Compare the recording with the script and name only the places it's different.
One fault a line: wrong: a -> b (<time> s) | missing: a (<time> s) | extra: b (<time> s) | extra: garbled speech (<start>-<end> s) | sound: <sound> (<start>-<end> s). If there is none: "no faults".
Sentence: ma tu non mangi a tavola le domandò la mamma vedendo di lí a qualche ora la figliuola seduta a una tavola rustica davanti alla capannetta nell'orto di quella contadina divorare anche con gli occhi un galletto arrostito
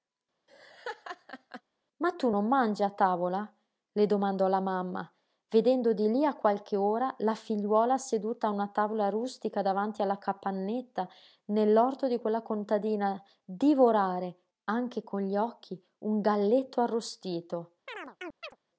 sound: laugh (0.5-1.6 s)
sound: chirp (17.9-18.6 s)